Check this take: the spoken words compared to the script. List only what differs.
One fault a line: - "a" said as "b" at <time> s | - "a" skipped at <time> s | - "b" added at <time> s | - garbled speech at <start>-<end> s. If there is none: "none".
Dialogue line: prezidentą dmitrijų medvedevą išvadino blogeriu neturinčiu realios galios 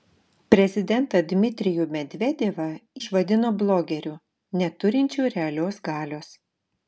none